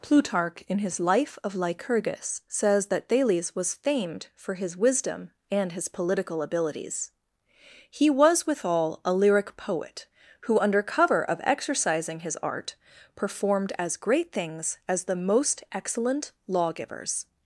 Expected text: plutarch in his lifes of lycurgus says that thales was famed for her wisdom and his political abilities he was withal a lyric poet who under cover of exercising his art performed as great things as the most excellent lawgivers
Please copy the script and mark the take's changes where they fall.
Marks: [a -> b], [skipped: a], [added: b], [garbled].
plutarch in his [lifes -> life] of lycurgus says that thales was famed for [her -> his] wisdom and his political abilities he was withal a lyric poet who under cover of exercising his art performed as great things as the most excellent lawgivers